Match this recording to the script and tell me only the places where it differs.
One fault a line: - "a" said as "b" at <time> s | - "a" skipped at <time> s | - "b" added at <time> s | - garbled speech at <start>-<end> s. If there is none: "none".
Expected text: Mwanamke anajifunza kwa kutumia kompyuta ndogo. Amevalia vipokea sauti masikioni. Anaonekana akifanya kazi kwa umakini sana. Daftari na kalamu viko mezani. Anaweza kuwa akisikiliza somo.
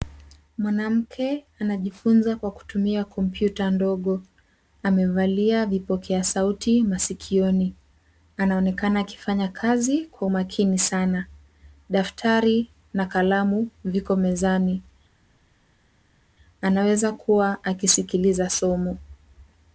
none